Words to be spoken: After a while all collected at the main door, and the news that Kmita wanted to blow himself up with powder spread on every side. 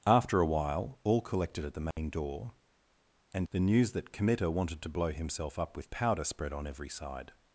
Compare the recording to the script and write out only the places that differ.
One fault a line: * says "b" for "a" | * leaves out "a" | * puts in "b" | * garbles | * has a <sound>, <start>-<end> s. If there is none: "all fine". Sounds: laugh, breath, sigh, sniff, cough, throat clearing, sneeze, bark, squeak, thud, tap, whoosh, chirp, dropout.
* has a dropout, 1.9-2.0 s